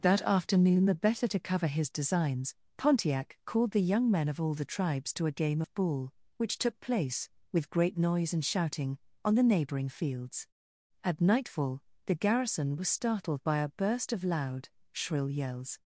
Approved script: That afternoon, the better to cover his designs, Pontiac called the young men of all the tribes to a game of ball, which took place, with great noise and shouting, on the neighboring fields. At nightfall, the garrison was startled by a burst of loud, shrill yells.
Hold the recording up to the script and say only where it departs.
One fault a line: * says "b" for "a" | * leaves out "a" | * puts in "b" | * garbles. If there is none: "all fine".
all fine